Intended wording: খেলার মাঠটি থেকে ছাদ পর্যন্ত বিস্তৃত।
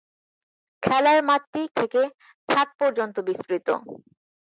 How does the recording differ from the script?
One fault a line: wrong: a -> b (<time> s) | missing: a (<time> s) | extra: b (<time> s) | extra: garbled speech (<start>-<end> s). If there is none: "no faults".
no faults